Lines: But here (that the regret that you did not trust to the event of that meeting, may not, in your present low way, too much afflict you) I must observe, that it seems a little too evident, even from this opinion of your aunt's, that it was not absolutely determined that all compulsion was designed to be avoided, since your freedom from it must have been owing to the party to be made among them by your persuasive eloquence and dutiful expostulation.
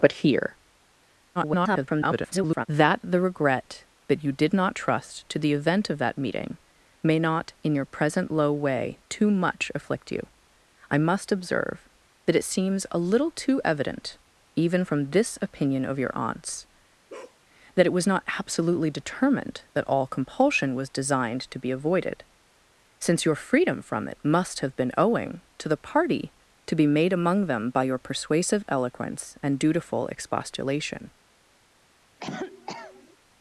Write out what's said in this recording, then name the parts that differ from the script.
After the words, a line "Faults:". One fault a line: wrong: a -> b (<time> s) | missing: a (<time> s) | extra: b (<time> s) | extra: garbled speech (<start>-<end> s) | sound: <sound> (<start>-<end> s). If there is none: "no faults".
But here [garbled] (that the regret that you did not trust to the event of that meeting, may not, in your present low way, too much afflict you) I must observe, that it seems a little too evident, even from this opinion of your aunt's, that it was not absolutely determined that all compulsion was designed to be avoided, since your freedom from it must have been owing to the party to be made among them by your persuasive eloquence and dutiful expostulation.
Faults:
extra: garbled speech (1.3-2.7 s)
sound: bark (17.1-17.4 s)
sound: cough (32.2-33.2 s)